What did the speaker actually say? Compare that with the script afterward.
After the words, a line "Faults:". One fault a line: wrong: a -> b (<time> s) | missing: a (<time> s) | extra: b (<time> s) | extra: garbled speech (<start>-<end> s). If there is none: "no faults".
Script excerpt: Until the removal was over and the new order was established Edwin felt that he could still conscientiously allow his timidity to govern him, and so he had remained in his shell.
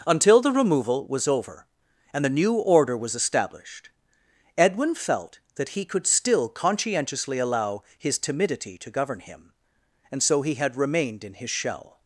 Until the removal was over and the new order was established Edwin felt that he could still conscientiously allow his timidity to govern him, and so he had remained in his shell.
Faults:
no faults